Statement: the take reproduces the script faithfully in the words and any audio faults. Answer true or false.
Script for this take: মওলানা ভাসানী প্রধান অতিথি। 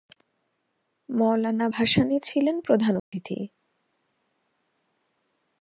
false